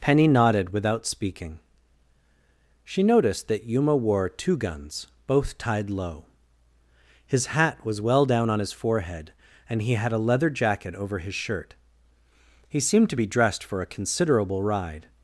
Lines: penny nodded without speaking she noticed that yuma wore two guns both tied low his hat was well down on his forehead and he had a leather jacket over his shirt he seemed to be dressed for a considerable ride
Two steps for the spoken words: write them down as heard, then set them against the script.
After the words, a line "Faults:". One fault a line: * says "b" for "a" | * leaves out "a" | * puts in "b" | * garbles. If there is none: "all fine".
penny nodded without speaking she noticed that yuma wore two guns both tied low his hat was well down on his forehead and he had a leather jacket over his shirt he seemed to be dressed for a considerable ride
Faults:
all fine